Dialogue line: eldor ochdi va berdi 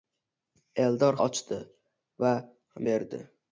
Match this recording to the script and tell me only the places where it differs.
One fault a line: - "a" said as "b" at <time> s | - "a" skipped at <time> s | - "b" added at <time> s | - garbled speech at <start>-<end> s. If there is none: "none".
none